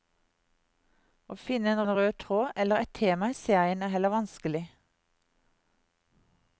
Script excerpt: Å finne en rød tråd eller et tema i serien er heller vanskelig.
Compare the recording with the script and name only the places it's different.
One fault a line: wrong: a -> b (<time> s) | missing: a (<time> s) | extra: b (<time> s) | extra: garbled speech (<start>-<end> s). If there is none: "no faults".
extra: en (1.8 s)